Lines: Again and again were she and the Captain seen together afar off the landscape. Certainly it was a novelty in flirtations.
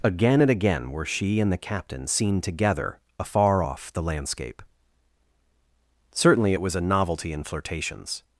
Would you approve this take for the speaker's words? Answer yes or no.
yes